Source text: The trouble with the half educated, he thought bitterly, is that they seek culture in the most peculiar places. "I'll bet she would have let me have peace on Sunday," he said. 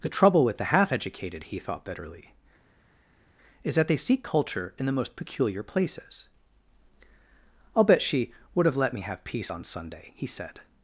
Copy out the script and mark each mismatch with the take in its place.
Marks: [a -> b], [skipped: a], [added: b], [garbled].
The trouble with the half educated, he thought bitterly, is that they seek culture in the most peculiar places. "I'll bet she would have let me have peace on Sunday," he said.